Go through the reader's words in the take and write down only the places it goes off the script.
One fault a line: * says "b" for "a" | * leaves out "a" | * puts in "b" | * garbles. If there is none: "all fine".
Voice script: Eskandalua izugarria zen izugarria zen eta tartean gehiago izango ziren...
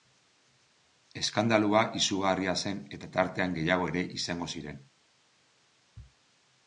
* leaves out "izugarria zen"
* puts in "ere"